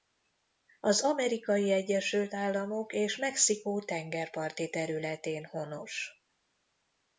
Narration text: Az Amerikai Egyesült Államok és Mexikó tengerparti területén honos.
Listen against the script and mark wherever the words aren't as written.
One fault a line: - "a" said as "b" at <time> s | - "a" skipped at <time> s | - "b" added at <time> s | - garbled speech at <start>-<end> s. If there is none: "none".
none